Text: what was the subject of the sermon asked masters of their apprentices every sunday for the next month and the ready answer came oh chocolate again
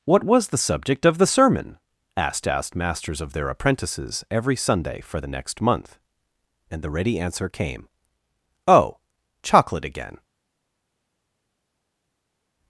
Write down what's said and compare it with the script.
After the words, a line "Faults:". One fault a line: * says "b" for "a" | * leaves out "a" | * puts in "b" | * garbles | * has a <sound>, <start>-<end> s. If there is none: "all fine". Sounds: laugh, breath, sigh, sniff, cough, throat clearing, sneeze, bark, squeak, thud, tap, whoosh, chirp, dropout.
what was the subject of the sermon asked asked masters of their apprentices every sunday for the next month and the ready answer came oh chocolate again
Faults:
* puts in "asked"